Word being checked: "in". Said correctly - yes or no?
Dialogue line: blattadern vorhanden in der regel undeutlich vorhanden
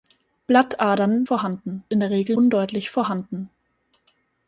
yes